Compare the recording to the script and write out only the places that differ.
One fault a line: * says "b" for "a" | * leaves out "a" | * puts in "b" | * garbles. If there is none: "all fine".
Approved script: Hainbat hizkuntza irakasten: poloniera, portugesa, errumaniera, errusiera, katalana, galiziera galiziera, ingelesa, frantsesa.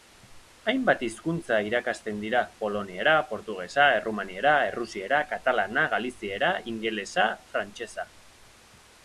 * puts in "dira"
* leaves out "galiziera"